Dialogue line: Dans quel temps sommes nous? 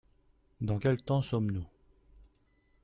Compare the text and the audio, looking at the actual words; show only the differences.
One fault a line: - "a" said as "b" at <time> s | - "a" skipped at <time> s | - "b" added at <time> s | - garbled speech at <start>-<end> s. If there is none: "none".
none